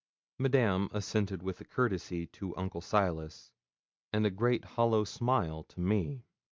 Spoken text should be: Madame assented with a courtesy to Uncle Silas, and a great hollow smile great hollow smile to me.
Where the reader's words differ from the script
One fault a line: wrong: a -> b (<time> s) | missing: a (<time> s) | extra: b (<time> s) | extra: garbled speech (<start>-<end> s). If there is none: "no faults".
missing: great hollow smile (5.6 s)